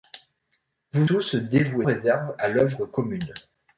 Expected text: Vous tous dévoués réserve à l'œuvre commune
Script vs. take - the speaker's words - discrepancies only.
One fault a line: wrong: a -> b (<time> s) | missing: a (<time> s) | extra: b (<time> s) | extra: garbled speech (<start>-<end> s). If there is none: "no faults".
no faults